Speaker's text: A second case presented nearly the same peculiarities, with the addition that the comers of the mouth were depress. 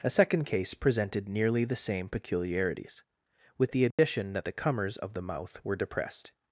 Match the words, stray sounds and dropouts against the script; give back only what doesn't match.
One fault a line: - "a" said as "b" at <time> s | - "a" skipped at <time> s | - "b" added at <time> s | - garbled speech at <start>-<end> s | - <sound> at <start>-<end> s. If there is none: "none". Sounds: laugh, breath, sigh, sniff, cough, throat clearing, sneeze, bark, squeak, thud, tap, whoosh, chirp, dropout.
- dropout at 3.9-4.0 s
- "depress" said as "depressed" at 5.8 s